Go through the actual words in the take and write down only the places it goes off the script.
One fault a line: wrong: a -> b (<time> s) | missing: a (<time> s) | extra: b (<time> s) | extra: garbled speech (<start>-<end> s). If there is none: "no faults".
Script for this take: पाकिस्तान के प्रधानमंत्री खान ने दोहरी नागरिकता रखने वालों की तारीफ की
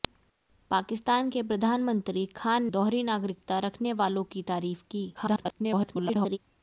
missing: ने (2.6 s)
extra: garbled speech (5.1-6.4 s)